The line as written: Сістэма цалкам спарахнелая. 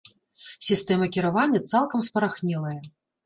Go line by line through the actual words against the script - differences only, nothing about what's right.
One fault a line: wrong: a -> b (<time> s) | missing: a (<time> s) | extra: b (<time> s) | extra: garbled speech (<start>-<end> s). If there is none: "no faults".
extra: кіравання (1.2 s)